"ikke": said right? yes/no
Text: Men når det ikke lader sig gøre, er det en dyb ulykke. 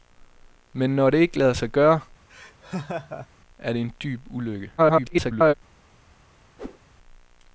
yes